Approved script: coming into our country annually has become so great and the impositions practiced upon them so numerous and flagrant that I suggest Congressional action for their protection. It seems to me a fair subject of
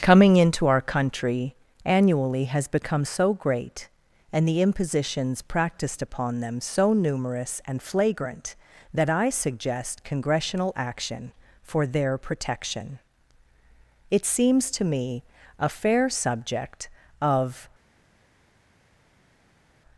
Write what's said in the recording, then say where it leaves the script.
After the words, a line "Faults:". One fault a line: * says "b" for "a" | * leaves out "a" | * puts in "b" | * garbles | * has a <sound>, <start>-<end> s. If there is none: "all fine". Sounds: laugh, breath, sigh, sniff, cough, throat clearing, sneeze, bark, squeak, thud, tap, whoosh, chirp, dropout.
coming into our country annually has become so great and the impositions practiced upon them so numerous and flagrant that I suggest Congressional action for their protection. It seems to me a fair subject of
Faults:
all fine